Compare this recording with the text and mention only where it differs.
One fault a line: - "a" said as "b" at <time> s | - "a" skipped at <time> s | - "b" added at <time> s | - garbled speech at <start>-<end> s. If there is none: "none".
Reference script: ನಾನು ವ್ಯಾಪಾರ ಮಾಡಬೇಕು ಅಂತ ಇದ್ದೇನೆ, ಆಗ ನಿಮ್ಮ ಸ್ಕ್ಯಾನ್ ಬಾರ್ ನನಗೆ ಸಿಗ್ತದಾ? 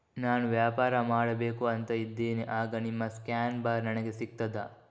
none